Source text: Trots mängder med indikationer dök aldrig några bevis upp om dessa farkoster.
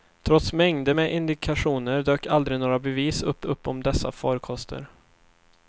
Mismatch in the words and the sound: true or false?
true